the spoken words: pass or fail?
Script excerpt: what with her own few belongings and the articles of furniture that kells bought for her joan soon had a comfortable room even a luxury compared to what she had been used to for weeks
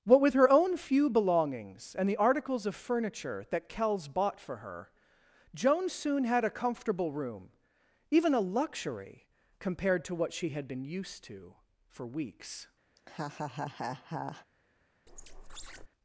pass